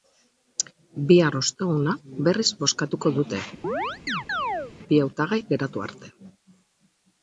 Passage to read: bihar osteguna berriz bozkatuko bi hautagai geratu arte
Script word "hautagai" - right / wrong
right